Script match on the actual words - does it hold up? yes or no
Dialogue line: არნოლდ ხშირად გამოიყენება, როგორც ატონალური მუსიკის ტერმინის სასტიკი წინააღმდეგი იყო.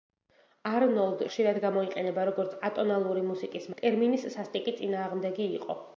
yes